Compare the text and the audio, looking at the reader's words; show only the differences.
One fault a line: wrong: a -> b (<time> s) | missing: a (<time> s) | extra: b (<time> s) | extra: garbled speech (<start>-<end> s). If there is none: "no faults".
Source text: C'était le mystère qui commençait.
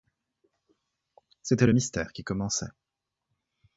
no faults